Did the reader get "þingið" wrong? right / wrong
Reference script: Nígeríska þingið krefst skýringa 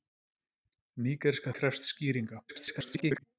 wrong